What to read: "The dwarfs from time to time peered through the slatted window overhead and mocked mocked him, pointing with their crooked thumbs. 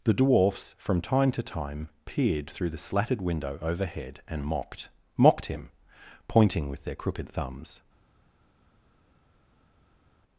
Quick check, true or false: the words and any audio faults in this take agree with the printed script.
true